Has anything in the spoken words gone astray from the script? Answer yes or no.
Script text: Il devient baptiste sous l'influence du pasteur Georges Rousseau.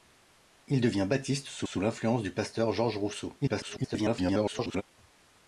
yes